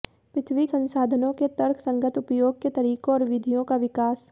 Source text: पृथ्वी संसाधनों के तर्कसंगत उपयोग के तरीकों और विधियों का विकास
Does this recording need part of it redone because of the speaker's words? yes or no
no